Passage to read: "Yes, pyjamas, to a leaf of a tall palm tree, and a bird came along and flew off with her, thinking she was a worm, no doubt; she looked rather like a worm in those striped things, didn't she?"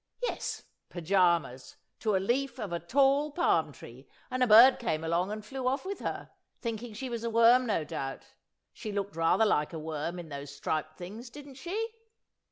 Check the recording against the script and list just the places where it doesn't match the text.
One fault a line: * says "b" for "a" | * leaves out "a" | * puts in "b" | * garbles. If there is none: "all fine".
all fine